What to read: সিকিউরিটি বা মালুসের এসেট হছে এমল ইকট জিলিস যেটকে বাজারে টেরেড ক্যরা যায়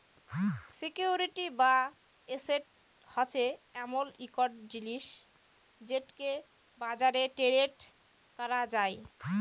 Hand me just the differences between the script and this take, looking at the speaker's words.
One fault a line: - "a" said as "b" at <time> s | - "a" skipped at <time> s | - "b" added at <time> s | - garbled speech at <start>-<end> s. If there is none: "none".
- "মালুসের" skipped at 1.7 s